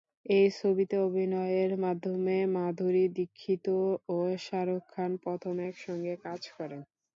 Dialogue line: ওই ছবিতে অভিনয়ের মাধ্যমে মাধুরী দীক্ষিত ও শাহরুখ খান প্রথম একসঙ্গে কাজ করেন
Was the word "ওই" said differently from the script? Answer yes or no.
yes